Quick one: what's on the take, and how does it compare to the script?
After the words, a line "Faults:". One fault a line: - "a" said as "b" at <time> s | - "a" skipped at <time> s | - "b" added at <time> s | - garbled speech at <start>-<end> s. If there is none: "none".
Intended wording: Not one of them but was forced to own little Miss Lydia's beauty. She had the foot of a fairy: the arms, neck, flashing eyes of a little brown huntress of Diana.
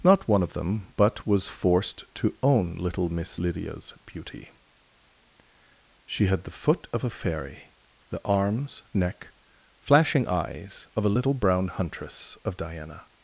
Not one of them but was forced to own little Miss Lydia's beauty. She had the foot of a fairy: the arms, neck, flashing eyes of a little brown huntress of Diana.
Faults:
none